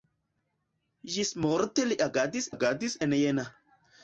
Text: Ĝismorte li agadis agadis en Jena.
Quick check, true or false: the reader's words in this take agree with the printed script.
true